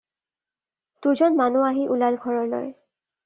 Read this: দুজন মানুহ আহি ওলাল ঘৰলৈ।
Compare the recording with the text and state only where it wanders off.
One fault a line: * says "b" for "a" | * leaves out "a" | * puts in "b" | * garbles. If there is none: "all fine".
all fine